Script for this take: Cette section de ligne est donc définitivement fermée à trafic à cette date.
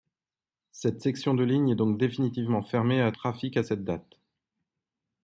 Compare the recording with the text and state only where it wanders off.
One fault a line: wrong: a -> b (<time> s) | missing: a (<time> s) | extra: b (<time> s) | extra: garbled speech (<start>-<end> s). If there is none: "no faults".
no faults